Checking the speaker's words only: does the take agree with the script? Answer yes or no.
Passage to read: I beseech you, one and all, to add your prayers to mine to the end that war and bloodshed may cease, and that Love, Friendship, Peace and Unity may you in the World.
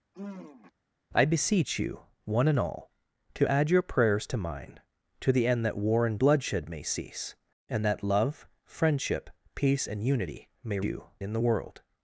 yes